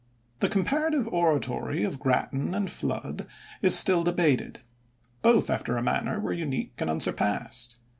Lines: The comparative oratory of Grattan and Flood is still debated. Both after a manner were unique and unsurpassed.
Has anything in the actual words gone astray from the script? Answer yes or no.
no